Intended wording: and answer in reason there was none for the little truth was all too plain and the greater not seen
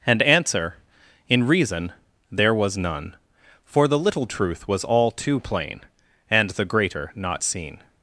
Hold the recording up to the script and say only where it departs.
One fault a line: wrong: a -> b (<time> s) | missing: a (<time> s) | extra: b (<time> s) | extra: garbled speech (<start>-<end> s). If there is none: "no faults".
no faults